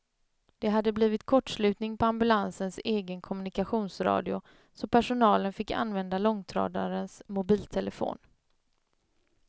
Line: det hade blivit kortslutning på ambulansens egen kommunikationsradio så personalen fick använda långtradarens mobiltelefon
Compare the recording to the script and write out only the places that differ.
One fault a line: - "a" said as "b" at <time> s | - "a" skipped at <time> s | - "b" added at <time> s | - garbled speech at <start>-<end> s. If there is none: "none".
none